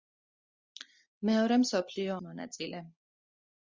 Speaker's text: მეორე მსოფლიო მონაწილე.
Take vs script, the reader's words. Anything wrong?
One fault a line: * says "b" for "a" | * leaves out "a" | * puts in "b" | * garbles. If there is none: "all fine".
all fine